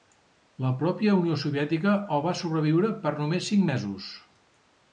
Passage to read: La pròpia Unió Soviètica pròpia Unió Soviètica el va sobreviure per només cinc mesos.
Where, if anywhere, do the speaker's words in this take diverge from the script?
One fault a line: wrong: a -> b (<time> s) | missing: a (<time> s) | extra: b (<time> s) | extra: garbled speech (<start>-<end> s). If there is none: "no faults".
missing: pròpia Unió Soviètica (1.9 s)